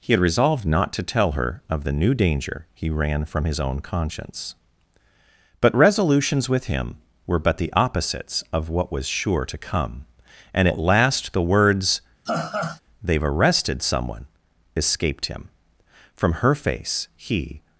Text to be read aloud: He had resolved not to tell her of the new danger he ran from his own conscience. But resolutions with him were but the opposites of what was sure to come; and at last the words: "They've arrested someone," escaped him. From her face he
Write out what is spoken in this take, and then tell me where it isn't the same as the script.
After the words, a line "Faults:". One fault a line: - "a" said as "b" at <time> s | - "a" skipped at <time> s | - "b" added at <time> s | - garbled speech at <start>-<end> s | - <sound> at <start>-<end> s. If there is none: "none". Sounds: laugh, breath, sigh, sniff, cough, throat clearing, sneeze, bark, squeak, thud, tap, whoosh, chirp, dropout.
He had resolved not to tell her of the new danger he ran from his own conscience. But resolutions with him were but the opposites of what was sure to come; and at last the words: "They've arrested someone," escaped him. From her face he
Faults:
- laugh at 12.3-12.8 s